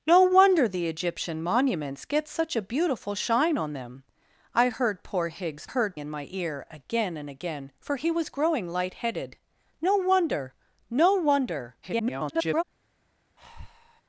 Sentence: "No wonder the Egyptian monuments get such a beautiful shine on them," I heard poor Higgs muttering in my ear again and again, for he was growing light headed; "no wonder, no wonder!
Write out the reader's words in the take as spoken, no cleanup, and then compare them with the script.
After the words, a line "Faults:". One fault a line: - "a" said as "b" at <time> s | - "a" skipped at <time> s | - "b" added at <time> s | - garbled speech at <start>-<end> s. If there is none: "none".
"No wonder the Egyptian monuments get such a beautiful shine on them," I heard poor Higgs heard in my ear again and again, for he was growing light headed; "no wonder, no wonder! [garbled]
Faults:
- "muttering" said as "heard" at 5.6 s
- garbled speech at 11.8-12.6 s